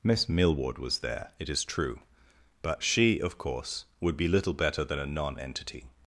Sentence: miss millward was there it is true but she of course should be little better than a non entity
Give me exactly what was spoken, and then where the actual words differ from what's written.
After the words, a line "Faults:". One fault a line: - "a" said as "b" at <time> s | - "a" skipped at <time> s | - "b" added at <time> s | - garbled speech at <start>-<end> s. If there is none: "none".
miss millward was there it is true but she of course would be little better than a non entity
Faults:
- "should" said as "would" at 4.0 s